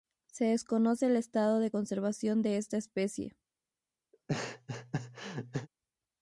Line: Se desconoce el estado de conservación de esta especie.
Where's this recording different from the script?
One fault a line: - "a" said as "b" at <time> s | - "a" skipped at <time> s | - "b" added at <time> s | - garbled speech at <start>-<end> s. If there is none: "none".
none